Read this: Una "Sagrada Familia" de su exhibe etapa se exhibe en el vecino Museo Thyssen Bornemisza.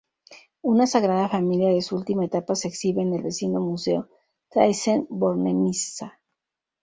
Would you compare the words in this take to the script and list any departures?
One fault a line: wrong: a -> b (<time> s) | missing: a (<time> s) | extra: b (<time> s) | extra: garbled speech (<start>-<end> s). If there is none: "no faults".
wrong: exhibe -> última (1.9 s)